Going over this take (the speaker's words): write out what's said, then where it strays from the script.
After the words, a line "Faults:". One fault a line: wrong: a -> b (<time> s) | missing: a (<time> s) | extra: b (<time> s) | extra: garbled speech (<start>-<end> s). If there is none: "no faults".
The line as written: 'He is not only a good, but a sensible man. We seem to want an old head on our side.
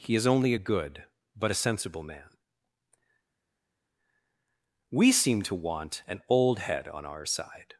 'He is only a good, but a sensible man. We seem to want an old head on our side.
Faults:
missing: not (0.2 s)